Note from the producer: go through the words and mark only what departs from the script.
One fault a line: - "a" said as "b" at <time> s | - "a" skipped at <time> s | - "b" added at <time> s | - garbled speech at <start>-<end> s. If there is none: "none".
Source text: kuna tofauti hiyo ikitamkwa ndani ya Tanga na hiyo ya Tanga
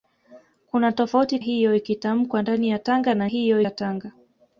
none